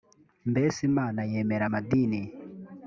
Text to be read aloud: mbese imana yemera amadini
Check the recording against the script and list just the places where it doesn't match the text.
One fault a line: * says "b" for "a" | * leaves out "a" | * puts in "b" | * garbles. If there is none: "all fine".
all fine